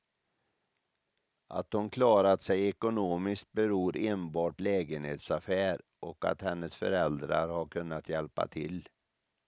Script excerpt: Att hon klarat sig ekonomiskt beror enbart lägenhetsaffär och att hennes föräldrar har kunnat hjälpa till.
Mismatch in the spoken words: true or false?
false